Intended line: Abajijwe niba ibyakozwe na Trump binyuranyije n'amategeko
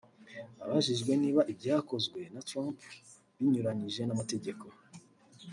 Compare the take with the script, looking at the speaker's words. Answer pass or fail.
pass